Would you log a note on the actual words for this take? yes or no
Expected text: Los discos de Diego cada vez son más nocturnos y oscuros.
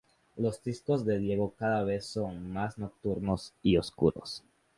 no